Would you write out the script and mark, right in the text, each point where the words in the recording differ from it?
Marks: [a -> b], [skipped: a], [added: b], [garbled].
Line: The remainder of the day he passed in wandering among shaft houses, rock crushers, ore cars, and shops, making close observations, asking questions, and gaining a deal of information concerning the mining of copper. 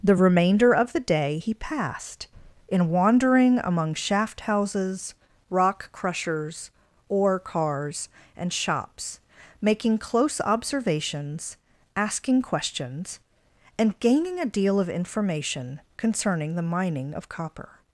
The remainder of the day he passed in wandering among shaft houses, rock crushers, ore cars, and shops, making close observations, asking questions, and gaining a deal of information concerning the mining of copper.